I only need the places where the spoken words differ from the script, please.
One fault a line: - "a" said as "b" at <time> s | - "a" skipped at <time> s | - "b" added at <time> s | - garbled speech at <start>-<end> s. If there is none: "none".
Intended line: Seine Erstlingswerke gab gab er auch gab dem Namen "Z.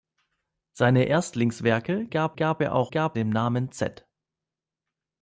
none